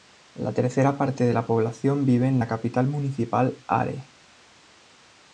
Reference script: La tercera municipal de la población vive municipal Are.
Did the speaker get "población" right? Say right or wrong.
right